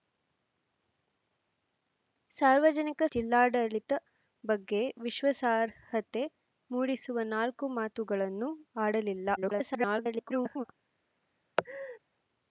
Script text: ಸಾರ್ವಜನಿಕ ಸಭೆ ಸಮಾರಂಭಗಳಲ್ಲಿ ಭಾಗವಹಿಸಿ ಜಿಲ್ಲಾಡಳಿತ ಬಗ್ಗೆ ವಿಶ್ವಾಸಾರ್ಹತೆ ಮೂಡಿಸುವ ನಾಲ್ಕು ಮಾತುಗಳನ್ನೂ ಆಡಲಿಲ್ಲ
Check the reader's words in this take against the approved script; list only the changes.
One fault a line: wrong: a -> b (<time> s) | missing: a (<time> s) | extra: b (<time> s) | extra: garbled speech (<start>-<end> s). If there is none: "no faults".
missing: ಸಭೆ ಸಮಾರಂಭಗಳಲ್ಲಿ ಭಾಗವಹಿಸಿ (3.0 s)
extra: garbled speech (9.4-10.6 s)